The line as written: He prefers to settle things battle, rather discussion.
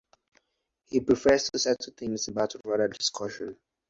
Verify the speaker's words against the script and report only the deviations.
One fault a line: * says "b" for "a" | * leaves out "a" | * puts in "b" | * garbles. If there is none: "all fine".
all fine